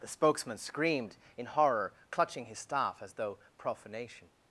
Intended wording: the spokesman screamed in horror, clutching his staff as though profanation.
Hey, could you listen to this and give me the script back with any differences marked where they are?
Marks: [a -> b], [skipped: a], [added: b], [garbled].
the spokesman screamed in horror, clutching his staff as though profanation.